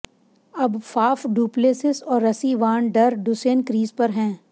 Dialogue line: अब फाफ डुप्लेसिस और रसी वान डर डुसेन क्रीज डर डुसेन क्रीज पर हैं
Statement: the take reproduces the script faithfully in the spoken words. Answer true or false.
false